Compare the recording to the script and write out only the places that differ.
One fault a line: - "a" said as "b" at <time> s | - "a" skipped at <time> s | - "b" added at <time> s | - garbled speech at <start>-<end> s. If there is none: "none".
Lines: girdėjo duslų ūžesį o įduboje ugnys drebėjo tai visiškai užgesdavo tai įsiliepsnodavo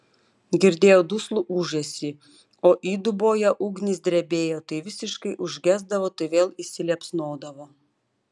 - "vėl" added at 6.3 s